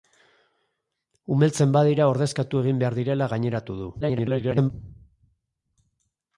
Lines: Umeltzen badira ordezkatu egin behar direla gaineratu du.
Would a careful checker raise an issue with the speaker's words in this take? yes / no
yes